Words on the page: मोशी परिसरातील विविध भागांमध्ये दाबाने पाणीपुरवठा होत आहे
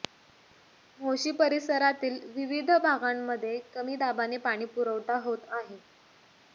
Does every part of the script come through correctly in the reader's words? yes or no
no